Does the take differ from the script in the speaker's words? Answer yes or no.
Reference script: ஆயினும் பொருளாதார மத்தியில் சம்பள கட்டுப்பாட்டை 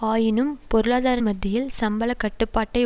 no